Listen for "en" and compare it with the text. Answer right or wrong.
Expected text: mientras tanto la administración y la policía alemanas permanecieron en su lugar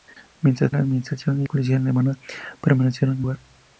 wrong